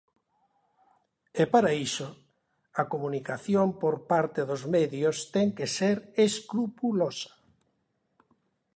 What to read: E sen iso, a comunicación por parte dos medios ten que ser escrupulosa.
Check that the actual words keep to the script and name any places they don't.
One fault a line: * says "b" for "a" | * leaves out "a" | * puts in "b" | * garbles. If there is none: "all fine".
* says "para" for "sen"